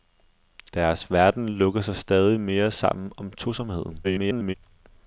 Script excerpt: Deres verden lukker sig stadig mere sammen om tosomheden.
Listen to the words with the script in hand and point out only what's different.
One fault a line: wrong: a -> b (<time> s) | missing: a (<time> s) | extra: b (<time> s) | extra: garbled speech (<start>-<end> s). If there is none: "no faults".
extra: garbled speech (4.0-4.5 s)